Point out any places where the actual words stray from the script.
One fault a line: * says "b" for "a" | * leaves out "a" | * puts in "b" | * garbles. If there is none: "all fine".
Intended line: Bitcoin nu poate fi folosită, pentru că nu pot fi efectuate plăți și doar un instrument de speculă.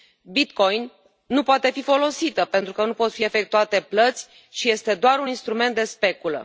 * puts in "este"